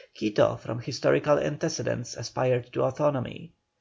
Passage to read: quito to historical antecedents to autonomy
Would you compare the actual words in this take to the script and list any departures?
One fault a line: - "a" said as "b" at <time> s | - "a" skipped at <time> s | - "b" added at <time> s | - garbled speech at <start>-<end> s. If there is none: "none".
- "to" said as "from" at 0.6 s
- "aspired" added at 2.1 s